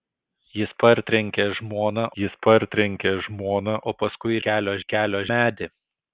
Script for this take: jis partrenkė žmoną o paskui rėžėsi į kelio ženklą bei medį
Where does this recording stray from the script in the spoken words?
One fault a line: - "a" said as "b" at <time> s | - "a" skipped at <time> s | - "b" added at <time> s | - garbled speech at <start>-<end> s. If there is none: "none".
- "jis partrenkė žmoną" added at 2.2 s
- "rėžėsi" said as "kelio" at 4.5 s
- "ženklą bei" skipped at 5.2 s